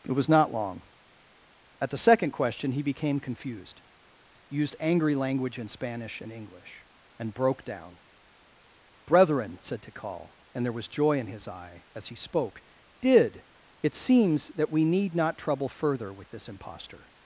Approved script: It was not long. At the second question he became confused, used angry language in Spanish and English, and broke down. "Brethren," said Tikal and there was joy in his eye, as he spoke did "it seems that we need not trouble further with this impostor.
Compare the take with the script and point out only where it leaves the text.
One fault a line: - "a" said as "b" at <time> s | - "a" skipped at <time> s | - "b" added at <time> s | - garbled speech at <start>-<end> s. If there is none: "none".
none